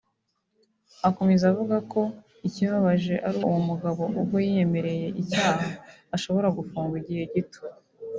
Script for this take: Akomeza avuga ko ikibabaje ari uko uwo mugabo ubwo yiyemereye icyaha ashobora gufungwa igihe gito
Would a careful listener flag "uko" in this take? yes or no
yes